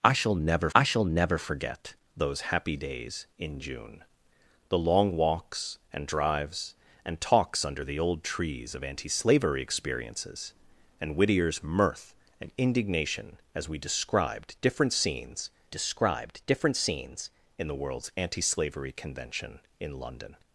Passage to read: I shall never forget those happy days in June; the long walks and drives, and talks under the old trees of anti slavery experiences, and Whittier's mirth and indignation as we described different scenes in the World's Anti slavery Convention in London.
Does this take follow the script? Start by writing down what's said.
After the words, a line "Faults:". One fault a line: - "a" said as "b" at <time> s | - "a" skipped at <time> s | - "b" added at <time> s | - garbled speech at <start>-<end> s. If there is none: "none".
I shall never I shall never forget those happy days in June; the long walks and drives, and talks under the old trees of anti slavery experiences, and Whittier's mirth and indignation as we described different scenes described different scenes in the World's Anti slavery Convention in London.
Faults:
- "I shall never" added at 0.7 s
- "described different scenes" added at 15.7 s